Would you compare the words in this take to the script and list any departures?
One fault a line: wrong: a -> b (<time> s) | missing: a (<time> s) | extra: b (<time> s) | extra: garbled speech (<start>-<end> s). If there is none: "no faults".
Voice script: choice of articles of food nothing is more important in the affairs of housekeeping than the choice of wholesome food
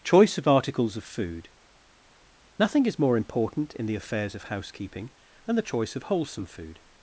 no faults